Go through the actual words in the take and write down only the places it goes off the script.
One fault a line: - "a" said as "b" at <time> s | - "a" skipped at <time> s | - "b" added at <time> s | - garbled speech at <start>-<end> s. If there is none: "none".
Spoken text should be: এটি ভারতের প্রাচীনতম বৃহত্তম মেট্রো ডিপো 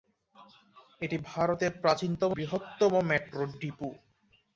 none